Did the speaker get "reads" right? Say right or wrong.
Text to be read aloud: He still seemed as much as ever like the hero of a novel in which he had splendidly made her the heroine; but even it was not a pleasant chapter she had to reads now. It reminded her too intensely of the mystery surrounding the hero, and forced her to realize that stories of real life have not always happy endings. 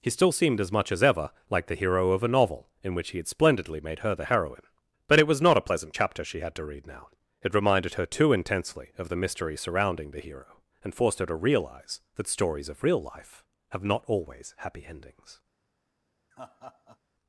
wrong